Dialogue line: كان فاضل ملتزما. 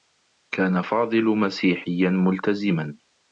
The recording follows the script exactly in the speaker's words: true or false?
false